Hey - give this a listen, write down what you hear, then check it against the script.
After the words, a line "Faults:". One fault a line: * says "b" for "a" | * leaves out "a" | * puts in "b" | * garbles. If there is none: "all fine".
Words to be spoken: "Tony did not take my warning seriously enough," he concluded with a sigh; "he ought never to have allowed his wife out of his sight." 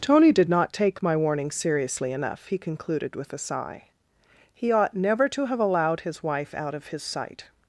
"Tony did not take my warning seriously enough," he concluded with a sigh; "he ought never to have allowed his wife out of his sight."
Faults:
all fine